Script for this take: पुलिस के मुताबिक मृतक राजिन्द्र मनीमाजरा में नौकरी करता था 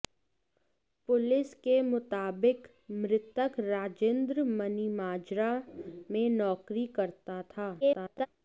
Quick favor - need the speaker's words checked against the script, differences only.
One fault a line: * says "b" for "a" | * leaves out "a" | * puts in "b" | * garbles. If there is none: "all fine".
* garbles